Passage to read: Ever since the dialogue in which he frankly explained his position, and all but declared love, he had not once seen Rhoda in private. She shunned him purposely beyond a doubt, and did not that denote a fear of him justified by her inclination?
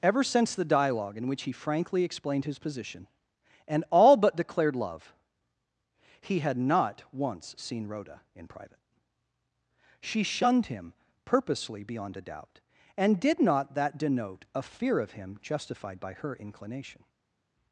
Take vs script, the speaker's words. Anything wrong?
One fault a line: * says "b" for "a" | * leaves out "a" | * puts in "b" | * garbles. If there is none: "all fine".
all fine